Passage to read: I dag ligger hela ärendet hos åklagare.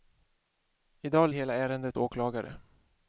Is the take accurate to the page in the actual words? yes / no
no